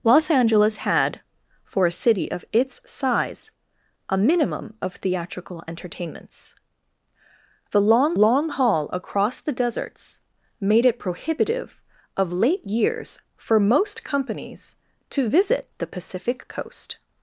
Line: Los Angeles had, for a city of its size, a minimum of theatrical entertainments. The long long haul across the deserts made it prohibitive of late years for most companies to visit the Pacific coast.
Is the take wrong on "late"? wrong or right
right